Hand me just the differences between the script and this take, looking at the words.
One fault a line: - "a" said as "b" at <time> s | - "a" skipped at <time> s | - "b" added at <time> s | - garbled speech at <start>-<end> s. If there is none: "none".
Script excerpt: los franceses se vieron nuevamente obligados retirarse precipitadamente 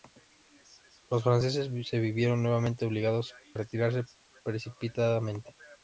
none